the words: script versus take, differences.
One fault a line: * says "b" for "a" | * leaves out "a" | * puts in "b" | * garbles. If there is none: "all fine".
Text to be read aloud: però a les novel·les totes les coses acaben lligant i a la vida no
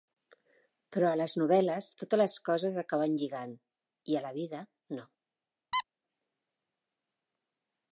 all fine